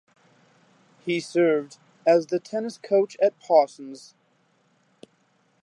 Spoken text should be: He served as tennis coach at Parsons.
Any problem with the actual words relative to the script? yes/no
yes